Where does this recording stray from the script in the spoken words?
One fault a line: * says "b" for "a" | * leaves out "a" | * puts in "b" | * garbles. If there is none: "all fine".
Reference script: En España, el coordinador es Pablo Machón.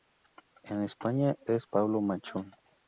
* leaves out "el coordinador"